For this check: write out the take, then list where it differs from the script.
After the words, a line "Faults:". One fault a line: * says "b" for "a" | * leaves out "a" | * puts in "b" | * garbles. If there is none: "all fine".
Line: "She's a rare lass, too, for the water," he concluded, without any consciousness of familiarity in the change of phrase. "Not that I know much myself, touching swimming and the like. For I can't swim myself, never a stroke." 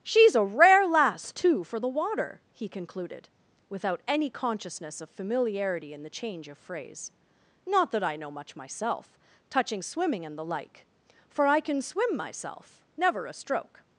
"She's a rare lass, too, for the water," he concluded, without any consciousness of familiarity in the change of phrase. "Not that I know much myself, touching swimming and the like. For I can swim myself, never a stroke."
Faults:
* says "can" for "can't"